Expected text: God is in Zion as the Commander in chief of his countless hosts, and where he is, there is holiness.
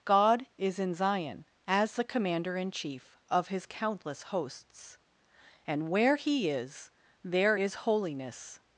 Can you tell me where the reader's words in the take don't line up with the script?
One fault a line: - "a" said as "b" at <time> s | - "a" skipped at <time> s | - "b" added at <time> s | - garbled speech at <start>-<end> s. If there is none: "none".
none